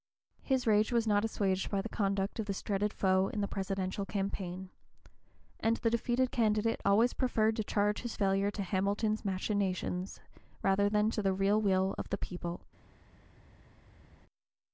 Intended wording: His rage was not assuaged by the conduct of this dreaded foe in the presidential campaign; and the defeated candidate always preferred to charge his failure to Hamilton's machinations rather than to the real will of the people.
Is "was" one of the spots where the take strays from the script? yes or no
no